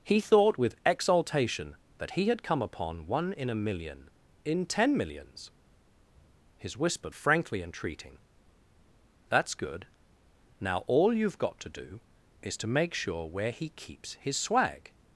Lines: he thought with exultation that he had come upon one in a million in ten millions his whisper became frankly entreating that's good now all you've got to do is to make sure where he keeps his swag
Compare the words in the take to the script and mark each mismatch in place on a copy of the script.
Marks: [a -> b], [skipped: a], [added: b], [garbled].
he thought with exultation that he had come upon one in a million in ten millions his whisper [skipped: became] frankly entreating that's good now all you've got to do is to make sure where he keeps his swag